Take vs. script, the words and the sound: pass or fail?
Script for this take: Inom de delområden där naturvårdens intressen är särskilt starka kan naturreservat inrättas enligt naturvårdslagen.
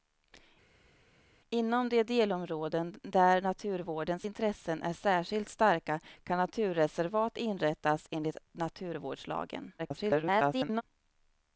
fail